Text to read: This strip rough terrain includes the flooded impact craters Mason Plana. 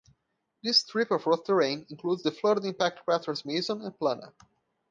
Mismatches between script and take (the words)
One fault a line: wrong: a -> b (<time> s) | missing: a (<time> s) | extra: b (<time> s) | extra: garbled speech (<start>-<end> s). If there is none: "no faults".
extra: of (1.1 s)
extra: and (3.8 s)